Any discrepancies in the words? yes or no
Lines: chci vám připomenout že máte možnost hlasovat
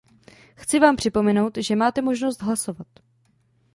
no